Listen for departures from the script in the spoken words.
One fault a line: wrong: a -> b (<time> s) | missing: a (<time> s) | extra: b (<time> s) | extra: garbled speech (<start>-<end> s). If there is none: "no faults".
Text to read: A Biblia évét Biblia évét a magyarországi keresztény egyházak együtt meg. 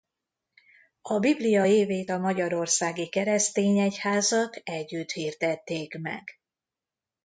missing: Biblia évét (2.1 s)
extra: hirdették (5.1 s)